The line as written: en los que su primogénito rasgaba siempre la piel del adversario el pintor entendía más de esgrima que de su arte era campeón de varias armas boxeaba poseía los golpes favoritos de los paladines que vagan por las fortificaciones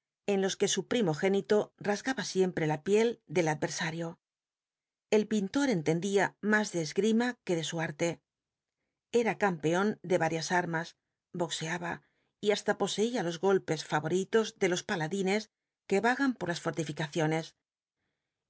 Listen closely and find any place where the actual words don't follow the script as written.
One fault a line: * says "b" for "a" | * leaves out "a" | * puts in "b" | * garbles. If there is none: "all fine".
* puts in "y hasta"